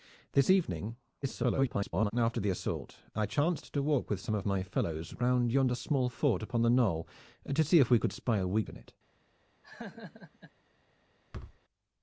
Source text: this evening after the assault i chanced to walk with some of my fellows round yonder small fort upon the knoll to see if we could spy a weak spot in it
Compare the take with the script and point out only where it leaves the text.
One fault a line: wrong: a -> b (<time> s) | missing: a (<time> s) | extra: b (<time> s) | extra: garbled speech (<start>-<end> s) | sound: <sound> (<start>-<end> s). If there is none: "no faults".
extra: garbled speech (1.2-2.1 s)
missing: spot (8.7 s)
sound: laugh (9.6-10.5 s)
sound: thud (11.3-11.6 s)